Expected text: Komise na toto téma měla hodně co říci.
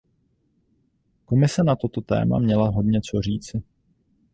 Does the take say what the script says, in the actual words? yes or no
yes